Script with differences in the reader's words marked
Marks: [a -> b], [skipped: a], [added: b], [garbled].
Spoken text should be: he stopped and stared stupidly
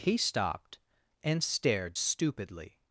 he stopped and stared stupidly